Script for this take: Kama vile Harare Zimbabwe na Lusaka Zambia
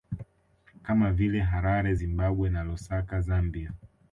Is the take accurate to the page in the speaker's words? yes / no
yes